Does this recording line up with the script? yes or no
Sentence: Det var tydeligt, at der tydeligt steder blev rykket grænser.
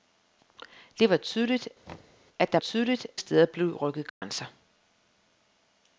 yes